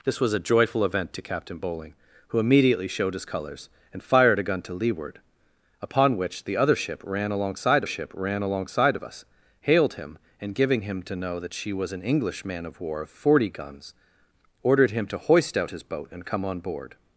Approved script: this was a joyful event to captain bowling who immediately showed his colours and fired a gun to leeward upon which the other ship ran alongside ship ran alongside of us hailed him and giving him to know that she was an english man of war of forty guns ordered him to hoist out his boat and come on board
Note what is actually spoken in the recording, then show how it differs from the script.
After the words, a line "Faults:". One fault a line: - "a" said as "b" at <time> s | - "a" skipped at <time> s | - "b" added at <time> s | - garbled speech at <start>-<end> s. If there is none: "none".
this was a joyful event to captain bowling who immediately showed his colours and fired a gun to leeward upon which the other ship ran alongside ship ran alongside of us hailed him and giving him to know that she was an english man of war of forty guns ordered him to hoist out his boat and come on board
Faults:
none